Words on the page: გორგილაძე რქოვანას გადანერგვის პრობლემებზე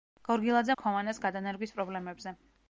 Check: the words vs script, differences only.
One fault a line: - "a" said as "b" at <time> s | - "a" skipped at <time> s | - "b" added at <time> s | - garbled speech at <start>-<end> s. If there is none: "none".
none